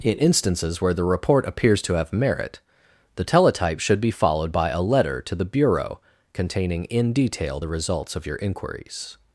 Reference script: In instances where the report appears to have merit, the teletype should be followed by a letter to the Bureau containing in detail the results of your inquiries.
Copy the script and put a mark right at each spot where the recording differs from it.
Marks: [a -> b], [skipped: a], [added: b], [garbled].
In instances where the report appears to have merit, the teletype should be followed by a letter to the Bureau containing in detail the results of your inquiries.